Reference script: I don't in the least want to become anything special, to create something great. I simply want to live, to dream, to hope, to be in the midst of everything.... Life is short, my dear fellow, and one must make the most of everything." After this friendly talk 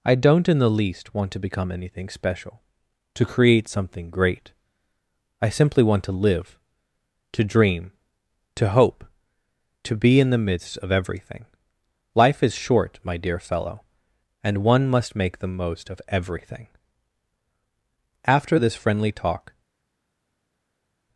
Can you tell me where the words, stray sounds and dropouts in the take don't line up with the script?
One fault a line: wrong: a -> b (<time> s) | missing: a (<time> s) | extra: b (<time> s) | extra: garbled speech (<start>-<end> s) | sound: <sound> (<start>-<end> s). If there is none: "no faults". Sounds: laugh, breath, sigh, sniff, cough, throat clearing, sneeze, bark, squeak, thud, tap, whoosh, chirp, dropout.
no faults